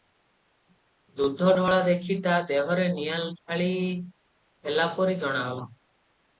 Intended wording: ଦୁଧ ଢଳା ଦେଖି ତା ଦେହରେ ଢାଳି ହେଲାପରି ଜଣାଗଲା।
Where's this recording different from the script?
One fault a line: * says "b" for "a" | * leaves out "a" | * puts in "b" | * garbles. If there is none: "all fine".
* puts in "ନିଆଁ"